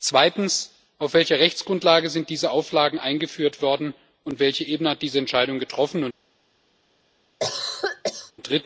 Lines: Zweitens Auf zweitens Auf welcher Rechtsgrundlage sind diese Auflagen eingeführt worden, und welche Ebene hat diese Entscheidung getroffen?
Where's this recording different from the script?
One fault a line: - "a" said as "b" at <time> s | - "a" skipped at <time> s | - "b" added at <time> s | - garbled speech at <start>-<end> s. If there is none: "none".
- "zweitens Auf" skipped at 1.1 s